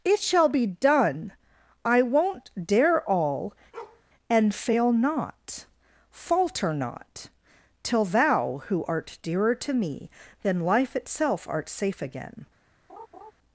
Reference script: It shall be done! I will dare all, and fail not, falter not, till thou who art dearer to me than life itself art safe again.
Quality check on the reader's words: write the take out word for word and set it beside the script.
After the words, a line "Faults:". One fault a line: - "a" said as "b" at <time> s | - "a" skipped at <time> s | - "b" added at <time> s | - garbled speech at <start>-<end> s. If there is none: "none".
It shall be done! I won't dare all, and fail not, falter not, till thou who art dearer to me than life itself art safe again.
Faults:
- "will" said as "won't" at 2.0 s